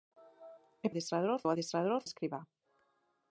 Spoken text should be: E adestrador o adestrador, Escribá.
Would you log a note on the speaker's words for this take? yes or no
no